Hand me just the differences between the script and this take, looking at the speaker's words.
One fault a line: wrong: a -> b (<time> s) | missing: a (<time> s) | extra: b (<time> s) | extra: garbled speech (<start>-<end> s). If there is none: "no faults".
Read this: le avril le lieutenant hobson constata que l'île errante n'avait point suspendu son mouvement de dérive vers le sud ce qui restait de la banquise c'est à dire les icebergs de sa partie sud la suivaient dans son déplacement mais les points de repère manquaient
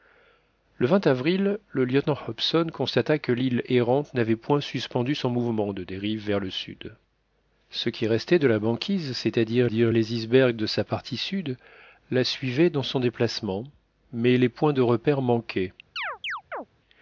extra: dire (9.7 s)